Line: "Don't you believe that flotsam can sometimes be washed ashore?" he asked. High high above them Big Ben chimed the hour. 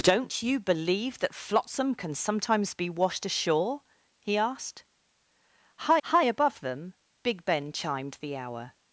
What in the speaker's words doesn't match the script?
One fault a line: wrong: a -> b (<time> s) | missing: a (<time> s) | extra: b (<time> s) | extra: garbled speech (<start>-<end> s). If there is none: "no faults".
no faults